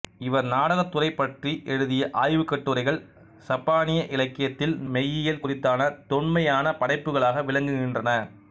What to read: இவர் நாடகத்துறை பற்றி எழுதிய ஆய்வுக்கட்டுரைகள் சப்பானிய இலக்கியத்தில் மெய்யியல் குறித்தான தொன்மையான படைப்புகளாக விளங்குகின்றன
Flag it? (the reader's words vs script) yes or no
no